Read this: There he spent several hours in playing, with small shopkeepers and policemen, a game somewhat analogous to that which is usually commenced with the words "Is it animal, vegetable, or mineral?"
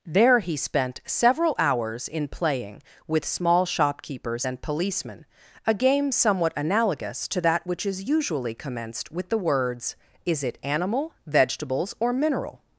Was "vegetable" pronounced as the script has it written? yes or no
no